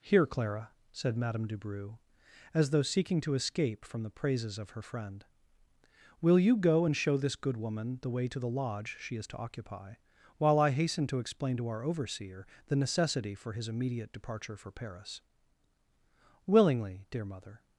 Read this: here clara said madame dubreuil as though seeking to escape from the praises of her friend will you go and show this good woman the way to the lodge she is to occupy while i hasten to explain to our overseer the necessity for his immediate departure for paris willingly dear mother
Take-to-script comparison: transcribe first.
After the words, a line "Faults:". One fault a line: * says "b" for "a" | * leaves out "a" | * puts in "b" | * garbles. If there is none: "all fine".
here clara said madame dubreuil as though seeking to escape from the praises of her friend will you go and show this good woman the way to the lodge she is to occupy while i hasten to explain to our overseer the necessity for his immediate departure for paris willingly dear mother
Faults:
all fine